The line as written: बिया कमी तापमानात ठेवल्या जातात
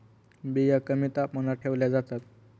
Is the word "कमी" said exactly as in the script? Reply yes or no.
yes